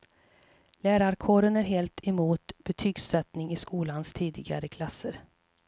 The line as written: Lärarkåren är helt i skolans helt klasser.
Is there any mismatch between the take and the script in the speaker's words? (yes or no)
yes